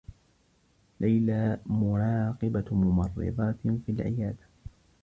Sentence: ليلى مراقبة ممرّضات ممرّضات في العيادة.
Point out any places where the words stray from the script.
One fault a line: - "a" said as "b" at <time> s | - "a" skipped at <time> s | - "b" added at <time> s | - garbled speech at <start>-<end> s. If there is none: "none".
- "ممرّضات" skipped at 3.5 s